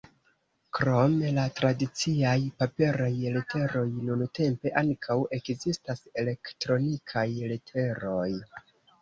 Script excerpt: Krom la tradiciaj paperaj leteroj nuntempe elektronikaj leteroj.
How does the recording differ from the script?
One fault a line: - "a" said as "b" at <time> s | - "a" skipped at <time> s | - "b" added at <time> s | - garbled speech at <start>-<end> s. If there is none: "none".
- "ankaŭ ekzistas" added at 4.8 s